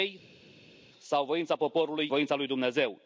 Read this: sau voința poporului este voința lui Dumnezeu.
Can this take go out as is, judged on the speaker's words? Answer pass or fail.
fail